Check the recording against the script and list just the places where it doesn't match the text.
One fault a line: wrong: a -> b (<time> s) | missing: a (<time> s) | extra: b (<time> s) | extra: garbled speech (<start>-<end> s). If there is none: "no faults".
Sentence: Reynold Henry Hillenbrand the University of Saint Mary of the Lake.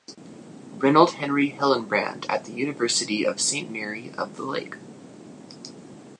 extra: at (2.3 s)